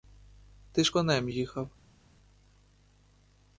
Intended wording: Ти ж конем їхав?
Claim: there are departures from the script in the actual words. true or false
false